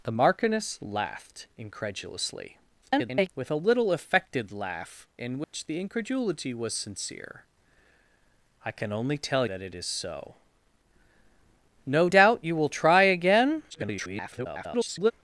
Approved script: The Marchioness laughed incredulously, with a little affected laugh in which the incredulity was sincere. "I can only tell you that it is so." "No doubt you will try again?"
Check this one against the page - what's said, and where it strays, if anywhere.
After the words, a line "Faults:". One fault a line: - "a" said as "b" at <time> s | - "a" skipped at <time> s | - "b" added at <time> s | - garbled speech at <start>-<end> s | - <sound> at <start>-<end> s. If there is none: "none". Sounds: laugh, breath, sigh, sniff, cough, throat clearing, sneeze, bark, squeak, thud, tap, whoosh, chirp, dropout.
The Marchioness laughed incredulously, [garbled] with a little affected laugh in which the incredulity was sincere. "I can only tell that it is so." "No doubt you will try again?" [garbled]
Faults:
- garbled speech at 2.8-3.3 s
- dropout at 5.4-5.5 s
- "you" skipped at 9.4 s
- garbled speech at 13.7-15.1 s